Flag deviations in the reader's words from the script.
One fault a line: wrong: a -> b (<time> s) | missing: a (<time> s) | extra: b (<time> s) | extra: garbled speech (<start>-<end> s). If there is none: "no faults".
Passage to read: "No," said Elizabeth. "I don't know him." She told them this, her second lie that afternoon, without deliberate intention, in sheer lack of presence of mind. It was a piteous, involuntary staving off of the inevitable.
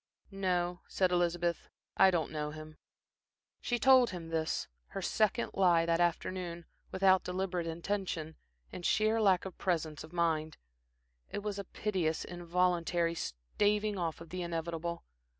wrong: them -> him (4.1 s)